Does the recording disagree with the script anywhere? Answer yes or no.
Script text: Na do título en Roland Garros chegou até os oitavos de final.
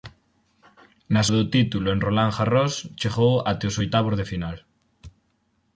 no